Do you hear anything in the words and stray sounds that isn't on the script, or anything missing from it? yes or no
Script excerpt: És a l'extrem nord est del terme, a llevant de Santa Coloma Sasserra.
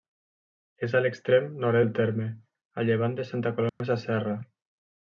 yes